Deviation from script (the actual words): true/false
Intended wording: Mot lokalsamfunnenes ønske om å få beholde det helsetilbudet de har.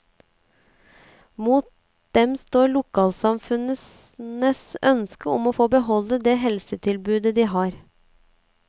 true